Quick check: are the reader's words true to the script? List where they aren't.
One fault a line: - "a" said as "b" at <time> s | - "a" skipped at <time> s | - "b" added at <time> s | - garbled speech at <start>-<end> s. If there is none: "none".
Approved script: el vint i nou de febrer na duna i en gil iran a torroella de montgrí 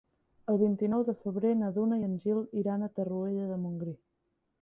none